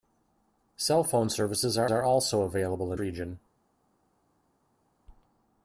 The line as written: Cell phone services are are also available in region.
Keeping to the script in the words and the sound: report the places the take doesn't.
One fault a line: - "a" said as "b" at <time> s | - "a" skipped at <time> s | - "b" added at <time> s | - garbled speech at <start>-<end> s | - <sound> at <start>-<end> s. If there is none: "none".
none